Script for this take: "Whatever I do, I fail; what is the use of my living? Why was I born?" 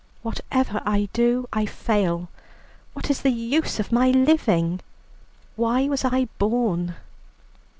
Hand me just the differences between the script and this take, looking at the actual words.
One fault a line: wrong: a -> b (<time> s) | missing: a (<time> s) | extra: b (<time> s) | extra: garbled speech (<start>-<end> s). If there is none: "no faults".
no faults